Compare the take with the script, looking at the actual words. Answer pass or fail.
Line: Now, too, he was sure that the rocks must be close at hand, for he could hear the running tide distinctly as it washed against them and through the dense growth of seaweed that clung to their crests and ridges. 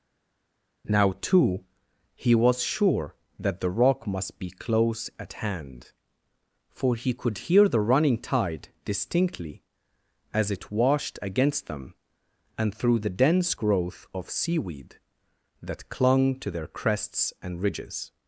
fail